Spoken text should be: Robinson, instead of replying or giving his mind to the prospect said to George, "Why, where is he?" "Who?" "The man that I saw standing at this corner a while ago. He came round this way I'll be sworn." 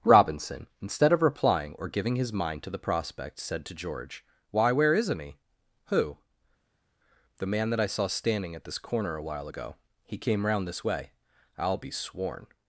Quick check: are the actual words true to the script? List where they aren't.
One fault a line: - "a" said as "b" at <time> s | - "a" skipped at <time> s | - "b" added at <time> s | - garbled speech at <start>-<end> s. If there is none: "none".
- "is" said as "isn't" at 5.0 s